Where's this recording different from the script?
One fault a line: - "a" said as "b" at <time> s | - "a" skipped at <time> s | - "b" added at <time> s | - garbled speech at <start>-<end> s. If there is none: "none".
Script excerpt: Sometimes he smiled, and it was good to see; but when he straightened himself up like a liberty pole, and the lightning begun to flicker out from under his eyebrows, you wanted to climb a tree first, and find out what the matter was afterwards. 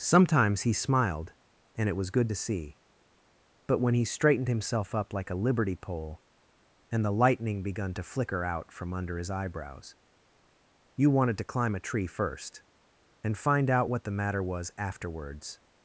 none